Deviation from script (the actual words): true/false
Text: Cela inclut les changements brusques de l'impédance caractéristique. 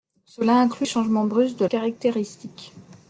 true